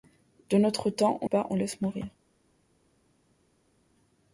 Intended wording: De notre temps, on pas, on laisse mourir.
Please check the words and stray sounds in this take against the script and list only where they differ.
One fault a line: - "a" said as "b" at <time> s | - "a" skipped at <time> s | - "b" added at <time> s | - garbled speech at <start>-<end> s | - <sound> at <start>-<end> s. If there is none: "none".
none